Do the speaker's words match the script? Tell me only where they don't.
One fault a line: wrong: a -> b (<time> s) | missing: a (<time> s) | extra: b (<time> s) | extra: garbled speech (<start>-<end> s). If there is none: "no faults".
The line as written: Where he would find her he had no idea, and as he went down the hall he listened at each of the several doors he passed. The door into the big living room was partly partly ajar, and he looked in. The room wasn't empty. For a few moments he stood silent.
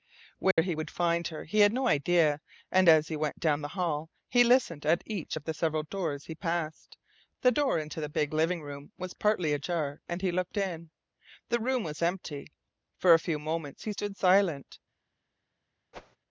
missing: partly (9.5 s)
wrong: wasn't -> was (11.8 s)